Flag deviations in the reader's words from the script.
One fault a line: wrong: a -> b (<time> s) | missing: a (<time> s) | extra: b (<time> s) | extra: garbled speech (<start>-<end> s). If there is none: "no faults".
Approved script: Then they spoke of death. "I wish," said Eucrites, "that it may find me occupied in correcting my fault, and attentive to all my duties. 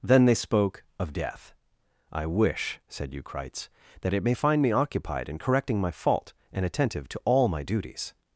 no faults